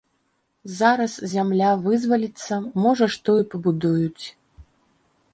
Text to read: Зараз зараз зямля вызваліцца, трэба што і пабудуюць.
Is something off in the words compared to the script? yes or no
yes